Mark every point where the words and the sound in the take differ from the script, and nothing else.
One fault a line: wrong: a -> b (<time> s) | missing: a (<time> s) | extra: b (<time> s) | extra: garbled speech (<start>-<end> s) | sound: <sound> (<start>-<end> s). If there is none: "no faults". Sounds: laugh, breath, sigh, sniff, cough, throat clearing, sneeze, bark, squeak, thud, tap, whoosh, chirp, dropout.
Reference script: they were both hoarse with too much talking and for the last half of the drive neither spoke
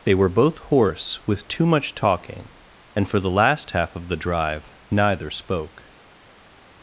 no faults